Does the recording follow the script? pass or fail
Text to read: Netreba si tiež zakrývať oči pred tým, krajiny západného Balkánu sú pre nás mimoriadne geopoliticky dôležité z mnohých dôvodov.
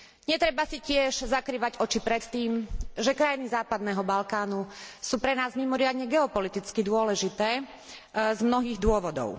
fail